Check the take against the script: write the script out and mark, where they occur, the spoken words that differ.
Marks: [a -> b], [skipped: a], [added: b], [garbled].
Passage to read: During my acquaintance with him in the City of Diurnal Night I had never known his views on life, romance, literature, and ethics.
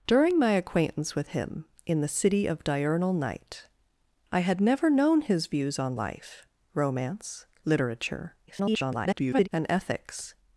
During my acquaintance with him in the City of Diurnal Night I had never known his views on life, romance, literature, [garbled] and ethics.